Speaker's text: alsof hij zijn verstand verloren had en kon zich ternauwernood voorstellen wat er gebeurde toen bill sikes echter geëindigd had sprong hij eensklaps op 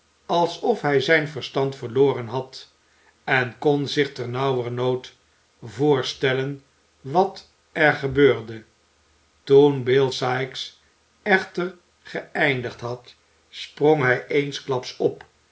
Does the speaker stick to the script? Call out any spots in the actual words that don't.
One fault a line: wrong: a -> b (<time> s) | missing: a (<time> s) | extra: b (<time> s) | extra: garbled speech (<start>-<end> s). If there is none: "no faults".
no faults